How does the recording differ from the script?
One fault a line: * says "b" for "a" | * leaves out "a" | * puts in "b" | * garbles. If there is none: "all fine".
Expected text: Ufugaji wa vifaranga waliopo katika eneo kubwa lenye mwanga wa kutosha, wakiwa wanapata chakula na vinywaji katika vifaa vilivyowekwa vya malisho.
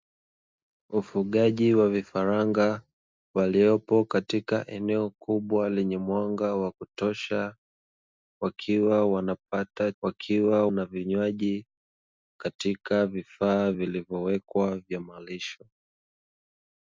* says "wakiwa" for "chakula"